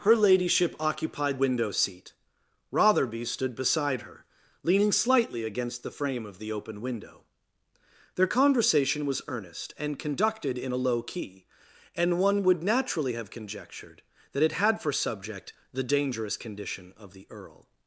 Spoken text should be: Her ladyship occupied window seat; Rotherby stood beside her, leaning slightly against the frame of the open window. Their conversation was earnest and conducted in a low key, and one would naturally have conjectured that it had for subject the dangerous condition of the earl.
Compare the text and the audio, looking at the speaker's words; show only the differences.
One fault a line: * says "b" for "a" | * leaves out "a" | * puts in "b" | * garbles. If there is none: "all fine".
all fine